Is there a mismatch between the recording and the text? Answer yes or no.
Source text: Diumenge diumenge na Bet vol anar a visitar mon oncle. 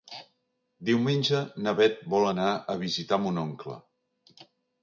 yes